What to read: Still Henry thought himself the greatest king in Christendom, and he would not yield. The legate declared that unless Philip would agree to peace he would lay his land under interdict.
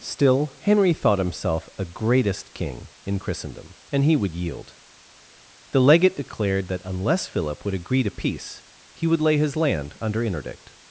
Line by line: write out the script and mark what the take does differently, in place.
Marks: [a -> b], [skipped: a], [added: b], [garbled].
Still Henry thought himself [the -> a] greatest king in Christendom, and he would [skipped: not] yield. The legate declared that unless Philip would agree to peace he would lay his land under interdict.